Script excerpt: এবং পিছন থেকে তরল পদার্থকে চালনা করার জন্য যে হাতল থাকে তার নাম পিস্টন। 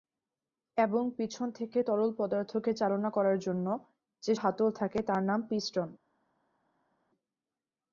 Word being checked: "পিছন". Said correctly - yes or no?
yes